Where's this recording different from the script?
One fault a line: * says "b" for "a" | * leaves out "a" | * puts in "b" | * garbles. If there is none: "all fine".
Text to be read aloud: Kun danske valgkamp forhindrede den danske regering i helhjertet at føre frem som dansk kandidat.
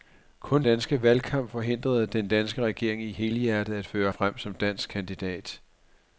all fine